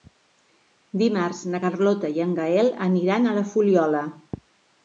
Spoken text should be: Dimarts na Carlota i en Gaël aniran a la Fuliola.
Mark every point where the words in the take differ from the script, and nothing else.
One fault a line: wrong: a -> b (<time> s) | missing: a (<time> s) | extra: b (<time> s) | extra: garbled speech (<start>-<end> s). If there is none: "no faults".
no faults